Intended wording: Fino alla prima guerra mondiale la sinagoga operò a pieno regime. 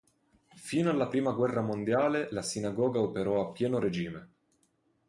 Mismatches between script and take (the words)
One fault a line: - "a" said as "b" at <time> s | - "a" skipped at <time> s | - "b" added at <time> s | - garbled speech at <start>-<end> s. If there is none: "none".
none